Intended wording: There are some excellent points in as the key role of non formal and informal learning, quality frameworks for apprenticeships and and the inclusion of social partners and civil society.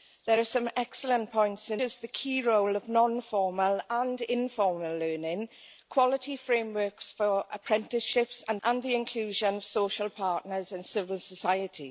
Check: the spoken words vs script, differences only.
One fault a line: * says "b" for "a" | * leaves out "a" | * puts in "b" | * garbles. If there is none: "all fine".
all fine